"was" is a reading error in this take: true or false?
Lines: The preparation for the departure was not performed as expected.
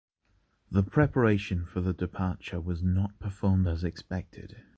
false